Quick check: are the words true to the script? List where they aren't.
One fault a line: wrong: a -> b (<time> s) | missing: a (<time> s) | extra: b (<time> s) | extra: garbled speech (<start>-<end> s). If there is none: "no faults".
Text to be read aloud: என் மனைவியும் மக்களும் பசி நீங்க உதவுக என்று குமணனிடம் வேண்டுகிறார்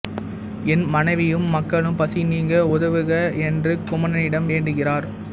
no faults